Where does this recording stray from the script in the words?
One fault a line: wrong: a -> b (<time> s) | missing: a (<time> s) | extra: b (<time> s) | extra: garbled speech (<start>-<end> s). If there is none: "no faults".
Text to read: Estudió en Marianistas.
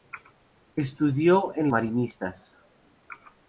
no faults